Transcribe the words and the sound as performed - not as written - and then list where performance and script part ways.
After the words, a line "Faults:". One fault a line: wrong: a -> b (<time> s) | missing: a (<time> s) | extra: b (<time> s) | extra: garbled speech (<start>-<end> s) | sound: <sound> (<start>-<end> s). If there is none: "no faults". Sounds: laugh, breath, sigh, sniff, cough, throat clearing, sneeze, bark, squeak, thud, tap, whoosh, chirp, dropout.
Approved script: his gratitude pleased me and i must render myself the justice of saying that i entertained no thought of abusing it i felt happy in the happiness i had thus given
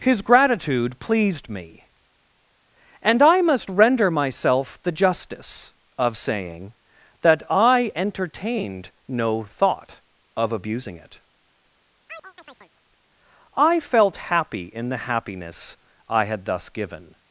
his gratitude pleased me and i must render myself the justice of saying that i entertained no thought of abusing it i felt happy in the happiness i had thus given
Faults:
sound: chirp (12.1-12.7 s)